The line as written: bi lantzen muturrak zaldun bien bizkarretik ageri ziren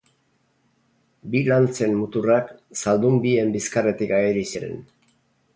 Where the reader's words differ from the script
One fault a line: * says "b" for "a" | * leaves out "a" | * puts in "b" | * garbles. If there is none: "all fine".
all fine